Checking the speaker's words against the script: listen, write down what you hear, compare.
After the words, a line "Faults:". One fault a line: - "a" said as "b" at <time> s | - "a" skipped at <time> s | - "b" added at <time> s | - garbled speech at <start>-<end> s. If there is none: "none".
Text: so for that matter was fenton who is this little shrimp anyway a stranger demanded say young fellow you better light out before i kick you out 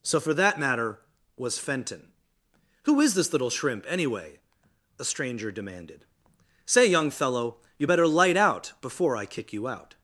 so for that matter was fenton who is this little shrimp anyway a stranger demanded say young fellow you better light out before i kick you out
Faults:
none